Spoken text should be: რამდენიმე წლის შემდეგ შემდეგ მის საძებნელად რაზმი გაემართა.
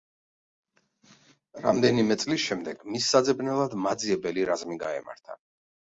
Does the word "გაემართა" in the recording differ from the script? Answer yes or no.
no